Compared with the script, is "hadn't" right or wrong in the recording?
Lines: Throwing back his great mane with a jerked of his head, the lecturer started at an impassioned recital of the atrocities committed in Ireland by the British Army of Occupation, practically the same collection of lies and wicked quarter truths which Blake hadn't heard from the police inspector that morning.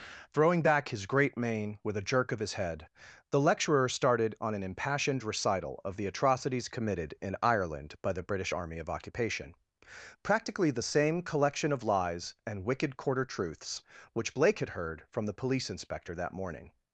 wrong